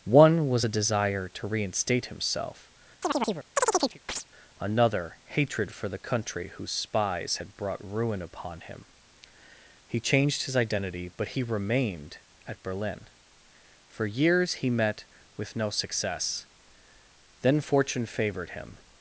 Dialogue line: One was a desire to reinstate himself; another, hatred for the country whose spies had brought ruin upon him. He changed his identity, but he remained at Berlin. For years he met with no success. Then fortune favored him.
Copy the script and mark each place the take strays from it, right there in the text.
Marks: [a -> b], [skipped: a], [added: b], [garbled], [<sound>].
One was a desire to reinstate himself; [chirp] another, hatred for the country whose spies had brought ruin upon him. He changed his identity, but he remained at Berlin. For years he met with no success. Then fortune favored him.